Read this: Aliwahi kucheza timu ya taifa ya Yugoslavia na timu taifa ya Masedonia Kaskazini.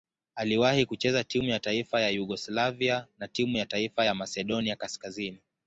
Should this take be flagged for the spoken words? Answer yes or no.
yes